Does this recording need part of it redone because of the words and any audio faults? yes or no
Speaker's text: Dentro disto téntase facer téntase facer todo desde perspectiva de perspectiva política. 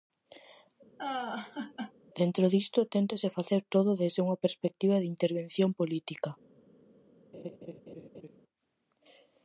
yes